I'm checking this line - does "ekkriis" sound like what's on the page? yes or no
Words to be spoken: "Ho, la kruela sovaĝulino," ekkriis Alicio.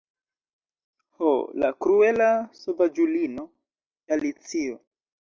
no